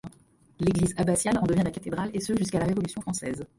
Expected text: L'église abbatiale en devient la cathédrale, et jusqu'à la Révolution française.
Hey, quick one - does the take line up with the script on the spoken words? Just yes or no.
no